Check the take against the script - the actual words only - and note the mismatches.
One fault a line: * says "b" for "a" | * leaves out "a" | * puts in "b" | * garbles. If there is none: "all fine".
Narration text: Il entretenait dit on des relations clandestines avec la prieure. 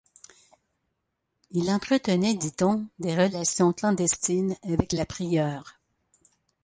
all fine